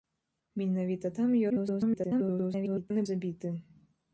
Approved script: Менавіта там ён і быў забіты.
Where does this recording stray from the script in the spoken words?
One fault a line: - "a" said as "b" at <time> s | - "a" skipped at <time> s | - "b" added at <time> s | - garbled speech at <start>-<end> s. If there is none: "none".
- garbled speech at 1.5-2.9 s
- "быў" skipped at 3.1 s